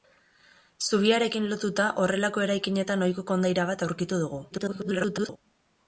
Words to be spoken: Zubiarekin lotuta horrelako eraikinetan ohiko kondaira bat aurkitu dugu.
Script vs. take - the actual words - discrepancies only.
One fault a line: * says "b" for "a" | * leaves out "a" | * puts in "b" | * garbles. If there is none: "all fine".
* garbles